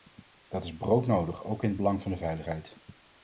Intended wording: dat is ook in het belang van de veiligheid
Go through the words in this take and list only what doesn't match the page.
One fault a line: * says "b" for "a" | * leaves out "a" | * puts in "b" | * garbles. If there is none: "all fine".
* puts in "broodnodig"